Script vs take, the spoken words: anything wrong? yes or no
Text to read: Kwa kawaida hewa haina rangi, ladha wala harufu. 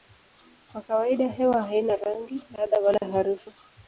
no